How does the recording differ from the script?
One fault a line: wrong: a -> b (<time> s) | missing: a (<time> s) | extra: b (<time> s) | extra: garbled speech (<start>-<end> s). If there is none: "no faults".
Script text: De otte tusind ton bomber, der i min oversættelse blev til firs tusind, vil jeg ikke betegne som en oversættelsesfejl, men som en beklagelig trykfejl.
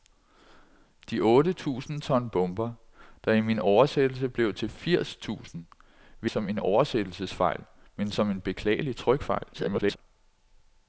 missing: jeg ikke betegne (6.3 s)
extra: garbled speech (9.5-10.0 s)